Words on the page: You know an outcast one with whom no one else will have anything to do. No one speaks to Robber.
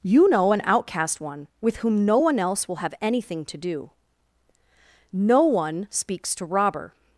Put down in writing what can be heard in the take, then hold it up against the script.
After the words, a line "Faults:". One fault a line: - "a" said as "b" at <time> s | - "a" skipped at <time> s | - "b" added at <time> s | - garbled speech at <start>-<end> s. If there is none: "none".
You know an outcast one with whom no one else will have anything to do. No one speaks to Robber.
Faults:
none